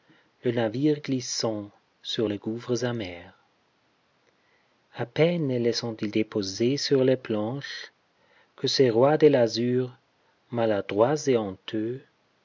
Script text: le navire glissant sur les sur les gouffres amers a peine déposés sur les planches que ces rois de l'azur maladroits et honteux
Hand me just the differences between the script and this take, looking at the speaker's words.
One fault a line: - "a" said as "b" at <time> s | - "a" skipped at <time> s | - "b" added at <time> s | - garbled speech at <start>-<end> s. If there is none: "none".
- "sur les" skipped at 2.4 s
- "les ont ils" added at 5.5 s